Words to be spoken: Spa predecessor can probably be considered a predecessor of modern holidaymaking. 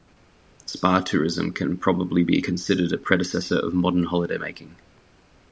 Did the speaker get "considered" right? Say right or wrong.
right